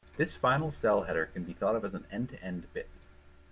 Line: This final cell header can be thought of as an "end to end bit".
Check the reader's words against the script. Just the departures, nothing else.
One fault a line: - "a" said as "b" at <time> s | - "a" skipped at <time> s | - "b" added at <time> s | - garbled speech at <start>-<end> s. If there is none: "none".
none